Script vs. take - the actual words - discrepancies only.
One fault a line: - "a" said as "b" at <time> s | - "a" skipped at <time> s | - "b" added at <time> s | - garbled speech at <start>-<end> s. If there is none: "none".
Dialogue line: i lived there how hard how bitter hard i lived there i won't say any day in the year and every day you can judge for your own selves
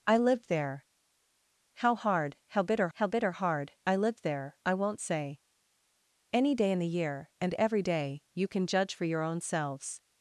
- "how bitter" added at 2.9 s